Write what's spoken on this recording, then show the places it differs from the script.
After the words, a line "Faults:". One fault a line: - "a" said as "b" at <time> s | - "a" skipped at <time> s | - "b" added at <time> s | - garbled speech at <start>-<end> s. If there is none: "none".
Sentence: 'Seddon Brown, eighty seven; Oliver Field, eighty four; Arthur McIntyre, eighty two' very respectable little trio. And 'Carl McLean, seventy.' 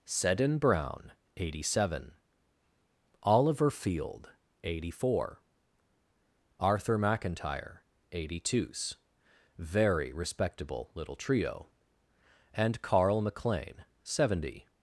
'Seddon Brown, eighty seven; Oliver Field, eighty four; Arthur McIntyre, eighty two' very respectable little trio. And 'Carl McLean, seventy.'
Faults:
none